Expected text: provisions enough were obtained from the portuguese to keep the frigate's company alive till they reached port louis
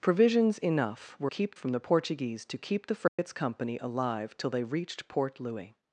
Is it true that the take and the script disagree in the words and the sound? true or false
true